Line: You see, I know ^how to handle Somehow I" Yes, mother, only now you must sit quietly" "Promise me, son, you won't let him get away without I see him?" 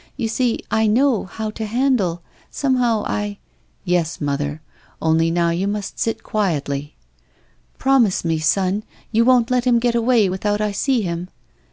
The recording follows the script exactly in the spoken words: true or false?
true